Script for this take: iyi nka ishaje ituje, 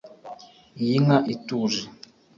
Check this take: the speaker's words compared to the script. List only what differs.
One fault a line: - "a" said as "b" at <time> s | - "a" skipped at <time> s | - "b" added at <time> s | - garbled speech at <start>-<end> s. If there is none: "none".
- "ishaje" skipped at 1.2 s